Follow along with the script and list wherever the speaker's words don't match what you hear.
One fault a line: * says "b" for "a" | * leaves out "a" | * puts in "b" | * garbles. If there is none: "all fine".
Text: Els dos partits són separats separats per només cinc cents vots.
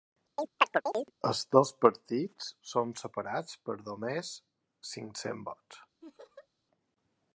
* leaves out "separats"